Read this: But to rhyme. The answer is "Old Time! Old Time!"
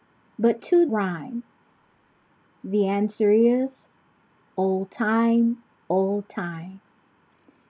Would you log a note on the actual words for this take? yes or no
no